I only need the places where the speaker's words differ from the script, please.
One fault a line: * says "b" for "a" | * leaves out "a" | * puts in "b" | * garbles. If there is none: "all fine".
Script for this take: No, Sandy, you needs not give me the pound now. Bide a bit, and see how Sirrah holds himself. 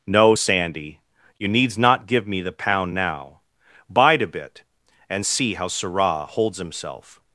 all fine